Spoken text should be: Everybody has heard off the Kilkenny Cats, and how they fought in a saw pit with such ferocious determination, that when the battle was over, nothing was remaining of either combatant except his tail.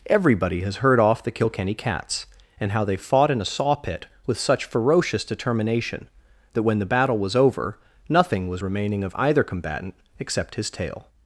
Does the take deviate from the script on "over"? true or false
false